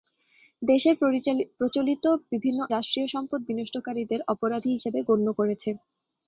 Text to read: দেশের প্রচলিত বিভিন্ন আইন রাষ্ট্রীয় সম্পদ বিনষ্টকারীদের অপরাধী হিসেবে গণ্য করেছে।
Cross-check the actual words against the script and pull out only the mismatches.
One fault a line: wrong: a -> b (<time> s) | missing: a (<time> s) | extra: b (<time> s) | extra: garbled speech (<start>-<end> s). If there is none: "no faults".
missing: আইন (2.6 s)